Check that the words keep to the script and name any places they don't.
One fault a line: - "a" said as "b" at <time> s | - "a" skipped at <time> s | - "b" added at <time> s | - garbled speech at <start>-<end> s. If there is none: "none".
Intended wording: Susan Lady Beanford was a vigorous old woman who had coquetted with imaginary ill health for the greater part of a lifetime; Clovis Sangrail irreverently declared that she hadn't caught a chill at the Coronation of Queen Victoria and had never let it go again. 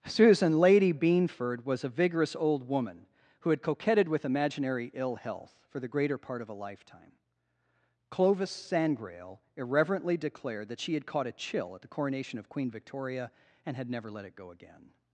- "hadn't" said as "had" at 10.9 s